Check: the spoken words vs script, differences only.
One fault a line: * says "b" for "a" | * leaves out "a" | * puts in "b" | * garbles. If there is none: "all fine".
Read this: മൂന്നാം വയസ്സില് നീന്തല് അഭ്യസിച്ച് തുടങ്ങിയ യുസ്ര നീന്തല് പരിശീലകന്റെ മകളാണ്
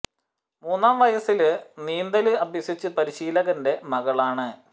* leaves out "തുടങ്ങിയ യുസ്ര നീന്തല്"